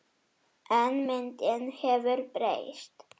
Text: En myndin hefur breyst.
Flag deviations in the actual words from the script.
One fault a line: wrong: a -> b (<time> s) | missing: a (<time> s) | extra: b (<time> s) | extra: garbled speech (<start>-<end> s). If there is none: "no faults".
no faults